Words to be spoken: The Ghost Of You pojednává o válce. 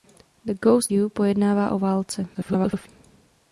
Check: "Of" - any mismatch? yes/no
yes